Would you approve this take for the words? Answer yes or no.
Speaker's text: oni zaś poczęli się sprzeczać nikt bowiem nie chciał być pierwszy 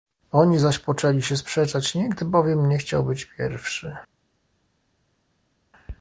yes